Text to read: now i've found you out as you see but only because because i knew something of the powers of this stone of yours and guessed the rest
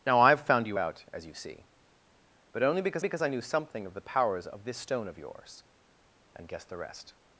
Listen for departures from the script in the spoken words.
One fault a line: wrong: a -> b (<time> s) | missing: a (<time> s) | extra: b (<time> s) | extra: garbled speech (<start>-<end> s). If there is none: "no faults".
no faults